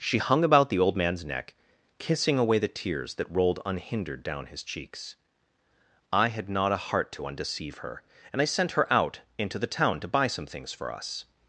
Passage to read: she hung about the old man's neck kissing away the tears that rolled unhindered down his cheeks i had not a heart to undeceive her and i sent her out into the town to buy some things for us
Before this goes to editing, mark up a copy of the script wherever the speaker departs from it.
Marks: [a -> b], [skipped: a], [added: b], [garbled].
she hung about the old man's neck kissing away the tears that rolled unhindered down his cheeks i had not a heart to undeceive her and i sent her out into the town to buy some things for us